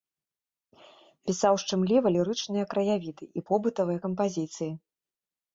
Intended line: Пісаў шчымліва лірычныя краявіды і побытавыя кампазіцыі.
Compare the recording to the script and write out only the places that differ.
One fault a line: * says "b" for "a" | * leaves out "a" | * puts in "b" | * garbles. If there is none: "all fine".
all fine